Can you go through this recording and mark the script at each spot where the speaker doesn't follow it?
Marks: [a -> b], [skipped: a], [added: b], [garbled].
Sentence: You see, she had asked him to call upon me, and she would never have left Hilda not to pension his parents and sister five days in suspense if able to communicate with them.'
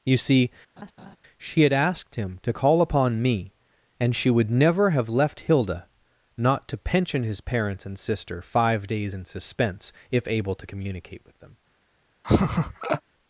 You see, she had asked him to call upon me, and she would never have left Hilda not to pension his parents and sister five days in suspense if able to communicate with them.'